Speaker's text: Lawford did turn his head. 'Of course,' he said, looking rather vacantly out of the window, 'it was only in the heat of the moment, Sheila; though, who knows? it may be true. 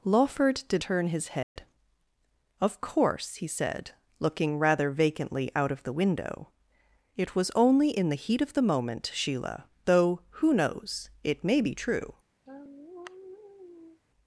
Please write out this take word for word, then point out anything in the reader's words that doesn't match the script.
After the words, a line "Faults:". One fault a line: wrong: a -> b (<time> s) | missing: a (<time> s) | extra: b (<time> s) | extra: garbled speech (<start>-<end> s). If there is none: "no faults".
Lawford did turn his head. 'Of course,' he said, looking rather vacantly out of the window, 'it was only in the heat of the moment, Sheila; though, who knows? it may be true.
Faults:
no faults